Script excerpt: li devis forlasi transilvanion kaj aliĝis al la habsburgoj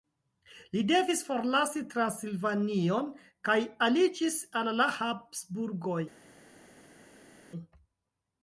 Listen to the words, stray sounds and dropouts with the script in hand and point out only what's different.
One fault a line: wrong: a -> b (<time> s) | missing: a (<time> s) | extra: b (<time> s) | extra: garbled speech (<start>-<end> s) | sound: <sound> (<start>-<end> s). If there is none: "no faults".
no faults